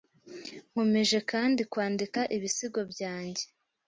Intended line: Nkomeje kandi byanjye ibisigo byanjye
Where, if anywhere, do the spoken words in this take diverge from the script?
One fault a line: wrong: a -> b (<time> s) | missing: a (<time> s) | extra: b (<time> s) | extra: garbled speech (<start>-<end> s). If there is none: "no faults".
wrong: byanjye -> kwandika (1.7 s)